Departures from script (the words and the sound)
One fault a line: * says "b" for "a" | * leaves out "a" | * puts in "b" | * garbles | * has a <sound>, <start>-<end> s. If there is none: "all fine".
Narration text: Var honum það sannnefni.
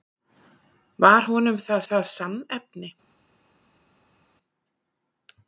* puts in "það"